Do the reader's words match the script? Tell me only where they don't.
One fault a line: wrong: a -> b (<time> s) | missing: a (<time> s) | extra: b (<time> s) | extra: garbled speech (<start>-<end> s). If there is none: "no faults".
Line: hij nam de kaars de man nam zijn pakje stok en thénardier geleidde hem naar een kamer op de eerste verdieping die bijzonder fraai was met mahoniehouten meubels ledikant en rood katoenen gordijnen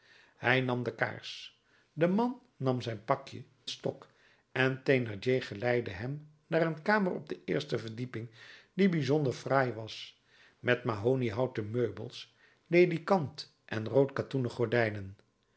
no faults